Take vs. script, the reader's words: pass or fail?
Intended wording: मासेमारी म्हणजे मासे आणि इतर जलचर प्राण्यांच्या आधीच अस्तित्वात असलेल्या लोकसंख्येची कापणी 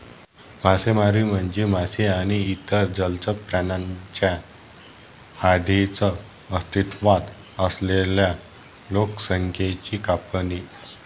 pass